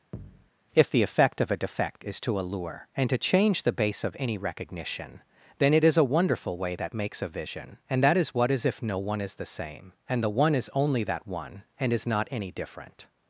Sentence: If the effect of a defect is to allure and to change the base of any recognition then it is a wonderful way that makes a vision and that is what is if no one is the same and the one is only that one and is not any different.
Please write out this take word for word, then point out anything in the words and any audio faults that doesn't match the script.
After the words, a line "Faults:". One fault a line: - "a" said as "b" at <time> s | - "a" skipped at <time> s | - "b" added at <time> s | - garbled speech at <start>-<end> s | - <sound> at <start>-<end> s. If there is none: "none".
If the effect of a defect is to allure and to change the base of any recognition then it is a wonderful way that makes a vision and that is what is if no one is the same and the one is only that one and is not any different.
Faults:
- thud at 0.1-0.5 s